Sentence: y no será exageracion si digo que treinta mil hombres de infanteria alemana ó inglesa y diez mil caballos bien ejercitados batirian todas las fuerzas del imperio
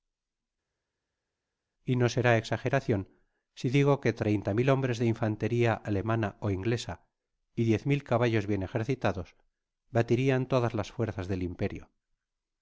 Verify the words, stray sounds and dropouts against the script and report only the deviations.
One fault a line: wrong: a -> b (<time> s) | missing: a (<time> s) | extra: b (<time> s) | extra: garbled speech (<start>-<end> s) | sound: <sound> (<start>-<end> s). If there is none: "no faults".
no faults